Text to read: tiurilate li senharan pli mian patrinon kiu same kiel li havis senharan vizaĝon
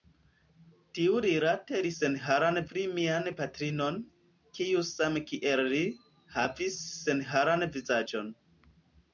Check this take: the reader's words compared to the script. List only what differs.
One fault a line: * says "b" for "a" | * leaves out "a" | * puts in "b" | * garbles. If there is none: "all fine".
all fine